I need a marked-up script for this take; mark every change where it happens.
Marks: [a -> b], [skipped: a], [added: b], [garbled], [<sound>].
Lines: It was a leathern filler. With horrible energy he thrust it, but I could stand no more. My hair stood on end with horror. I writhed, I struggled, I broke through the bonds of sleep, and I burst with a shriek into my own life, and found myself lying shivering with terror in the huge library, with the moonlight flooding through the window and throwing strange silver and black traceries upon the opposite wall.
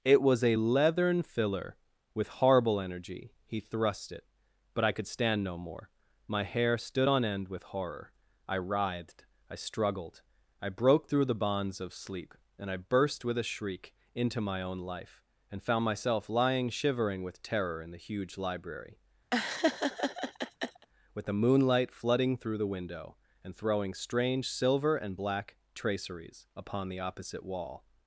It was a leathern filler. With horrible energy he thrust it, but I could stand no more. My hair stood on end with horror. I writhed, I struggled, I broke through the bonds of sleep, and I burst with a shriek into my own life, and found myself lying shivering with terror in the huge library, [laugh] with the moonlight flooding through the window and throwing strange silver and black traceries upon the opposite wall.